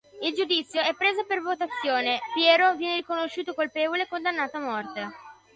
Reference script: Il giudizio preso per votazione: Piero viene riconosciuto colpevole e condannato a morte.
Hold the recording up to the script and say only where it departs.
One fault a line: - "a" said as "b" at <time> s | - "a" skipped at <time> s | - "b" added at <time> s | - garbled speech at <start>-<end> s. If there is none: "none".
- "è" added at 0.8 s